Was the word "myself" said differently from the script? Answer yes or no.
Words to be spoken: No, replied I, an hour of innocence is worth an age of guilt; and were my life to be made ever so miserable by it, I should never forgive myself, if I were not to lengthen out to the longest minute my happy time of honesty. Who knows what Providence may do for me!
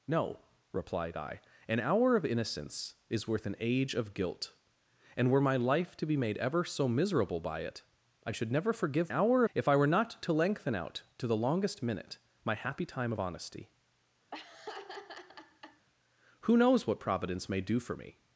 yes